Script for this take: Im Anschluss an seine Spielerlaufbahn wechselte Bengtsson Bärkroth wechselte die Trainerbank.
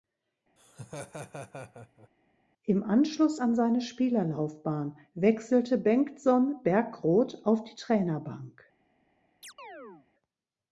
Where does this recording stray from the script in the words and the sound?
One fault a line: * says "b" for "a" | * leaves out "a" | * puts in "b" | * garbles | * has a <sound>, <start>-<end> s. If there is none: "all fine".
* has a laugh, 0.6-2.1 s
* says "auf" for "wechselte"
* has a chirp, 9.4-10.1 s